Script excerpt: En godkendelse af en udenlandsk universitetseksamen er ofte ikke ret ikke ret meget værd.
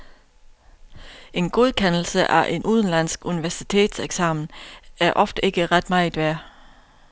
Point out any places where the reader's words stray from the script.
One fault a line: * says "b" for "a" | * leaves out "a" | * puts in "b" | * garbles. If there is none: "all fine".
* leaves out "ikke ret"